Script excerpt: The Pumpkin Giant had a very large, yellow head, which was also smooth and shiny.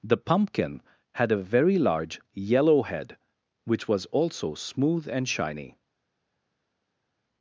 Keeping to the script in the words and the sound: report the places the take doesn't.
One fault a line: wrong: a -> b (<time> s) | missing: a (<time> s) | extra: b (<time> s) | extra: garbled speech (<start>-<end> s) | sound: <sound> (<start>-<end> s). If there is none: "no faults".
missing: Giant (0.8 s)